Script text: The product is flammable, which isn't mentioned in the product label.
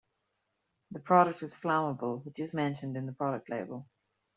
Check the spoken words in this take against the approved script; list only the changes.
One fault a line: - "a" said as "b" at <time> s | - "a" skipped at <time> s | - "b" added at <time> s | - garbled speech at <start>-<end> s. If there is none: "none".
- "isn't" said as "is" at 2.4 s